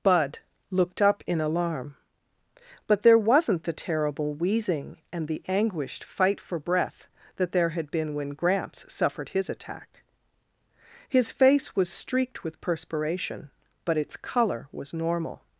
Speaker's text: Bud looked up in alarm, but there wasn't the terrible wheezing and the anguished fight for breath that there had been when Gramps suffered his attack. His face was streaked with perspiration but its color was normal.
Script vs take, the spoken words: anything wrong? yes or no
no